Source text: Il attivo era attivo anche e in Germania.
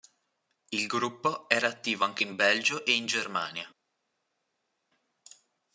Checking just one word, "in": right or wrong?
right